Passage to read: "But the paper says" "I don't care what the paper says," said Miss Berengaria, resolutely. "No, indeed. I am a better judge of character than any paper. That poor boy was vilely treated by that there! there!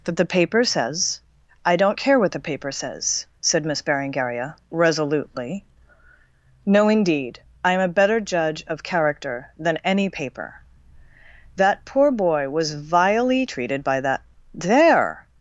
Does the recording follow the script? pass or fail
fail